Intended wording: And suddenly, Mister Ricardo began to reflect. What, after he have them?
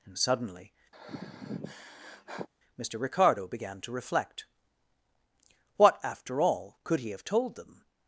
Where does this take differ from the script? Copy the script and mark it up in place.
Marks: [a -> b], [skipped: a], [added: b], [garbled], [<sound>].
And suddenly, [sigh] Mister Ricardo began to reflect. What, after [added: all could] he have [added: told] them?